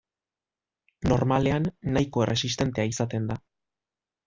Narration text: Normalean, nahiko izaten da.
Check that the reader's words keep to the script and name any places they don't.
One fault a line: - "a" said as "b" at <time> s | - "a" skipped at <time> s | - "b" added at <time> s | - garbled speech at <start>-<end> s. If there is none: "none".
- "erresistentea" added at 2.3 s